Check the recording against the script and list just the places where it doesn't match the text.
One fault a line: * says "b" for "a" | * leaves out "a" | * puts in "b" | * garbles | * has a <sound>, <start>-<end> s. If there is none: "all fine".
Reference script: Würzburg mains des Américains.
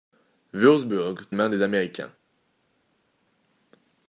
all fine